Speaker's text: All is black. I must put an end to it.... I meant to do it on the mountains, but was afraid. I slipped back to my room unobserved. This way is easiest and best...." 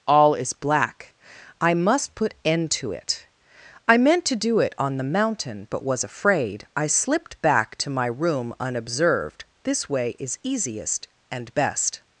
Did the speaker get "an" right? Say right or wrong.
wrong